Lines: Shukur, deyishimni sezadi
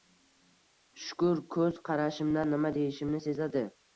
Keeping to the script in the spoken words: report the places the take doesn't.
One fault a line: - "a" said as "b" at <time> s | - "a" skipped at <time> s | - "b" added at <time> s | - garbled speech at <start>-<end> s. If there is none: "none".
- "ko`z qarashimdan nima" added at 1.6 s